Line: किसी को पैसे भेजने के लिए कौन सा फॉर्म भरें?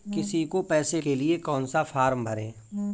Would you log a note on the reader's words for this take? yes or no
yes